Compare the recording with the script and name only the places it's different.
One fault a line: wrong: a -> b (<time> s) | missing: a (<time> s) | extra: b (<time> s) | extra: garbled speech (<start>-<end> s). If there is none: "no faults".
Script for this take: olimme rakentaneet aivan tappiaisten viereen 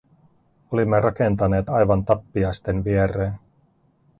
no faults